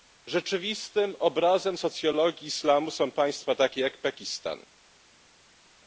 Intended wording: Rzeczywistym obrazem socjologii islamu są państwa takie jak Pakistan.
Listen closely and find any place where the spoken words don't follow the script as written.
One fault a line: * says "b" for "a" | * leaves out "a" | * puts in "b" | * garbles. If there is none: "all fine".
all fine